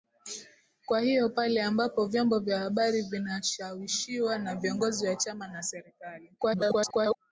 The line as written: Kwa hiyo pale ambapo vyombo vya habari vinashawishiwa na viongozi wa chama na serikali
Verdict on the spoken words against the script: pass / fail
fail